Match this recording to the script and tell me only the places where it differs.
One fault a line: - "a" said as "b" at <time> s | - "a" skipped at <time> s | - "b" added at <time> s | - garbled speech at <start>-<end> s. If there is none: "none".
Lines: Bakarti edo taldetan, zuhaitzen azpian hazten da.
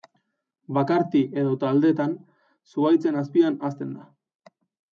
none